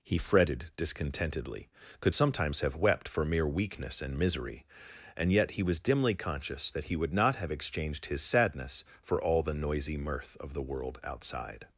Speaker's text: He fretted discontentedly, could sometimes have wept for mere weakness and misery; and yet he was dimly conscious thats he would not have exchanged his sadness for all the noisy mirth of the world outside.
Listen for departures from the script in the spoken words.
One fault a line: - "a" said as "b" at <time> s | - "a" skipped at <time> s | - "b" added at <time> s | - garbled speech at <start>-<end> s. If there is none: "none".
- "thats" said as "that" at 6.7 s